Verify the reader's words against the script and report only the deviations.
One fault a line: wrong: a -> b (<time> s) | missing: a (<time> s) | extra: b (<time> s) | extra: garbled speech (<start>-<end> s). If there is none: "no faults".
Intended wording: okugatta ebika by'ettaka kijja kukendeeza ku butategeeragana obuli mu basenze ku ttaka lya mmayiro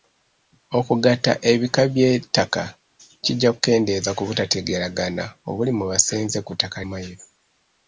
missing: lya (6.8 s)